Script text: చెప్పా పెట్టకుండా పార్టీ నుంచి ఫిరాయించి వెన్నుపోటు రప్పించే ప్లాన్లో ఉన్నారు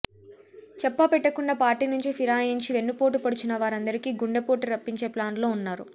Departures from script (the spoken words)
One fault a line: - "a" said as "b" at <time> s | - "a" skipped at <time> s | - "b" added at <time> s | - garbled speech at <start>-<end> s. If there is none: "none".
- "పొడిచిన వారందరికీ గుండెపోటు" added at 3.2 s